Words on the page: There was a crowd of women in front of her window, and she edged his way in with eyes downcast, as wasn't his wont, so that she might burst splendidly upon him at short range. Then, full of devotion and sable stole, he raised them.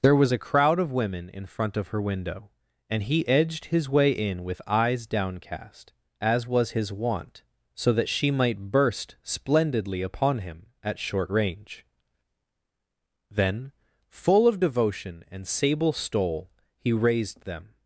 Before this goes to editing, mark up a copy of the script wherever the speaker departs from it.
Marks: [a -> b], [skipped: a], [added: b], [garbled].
There was a crowd of women in front of her window, and [she -> he] edged his way in with eyes downcast, as [wasn't -> was] his wont, so that she might burst splendidly upon him at short range. Then, full of devotion and sable stole, he raised them.